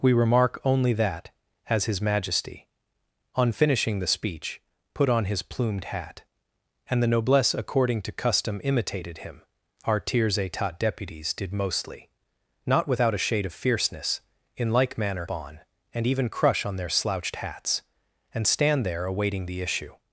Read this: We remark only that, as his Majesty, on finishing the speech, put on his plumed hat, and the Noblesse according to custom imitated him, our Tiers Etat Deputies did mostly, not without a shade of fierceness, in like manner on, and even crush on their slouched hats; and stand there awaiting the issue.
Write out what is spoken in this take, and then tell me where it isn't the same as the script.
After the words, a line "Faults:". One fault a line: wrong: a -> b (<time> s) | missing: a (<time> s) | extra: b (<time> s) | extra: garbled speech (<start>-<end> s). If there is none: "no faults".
We remark only that, as his Majesty, on finishing the speech, put on his plumed hat, and the Noblesse according to custom imitated him, our Tiers Etat Deputies did mostly, not without a shade of fierceness, in like manner on, and even crush on their slouched hats; and stand there awaiting the issue.
Faults:
no faults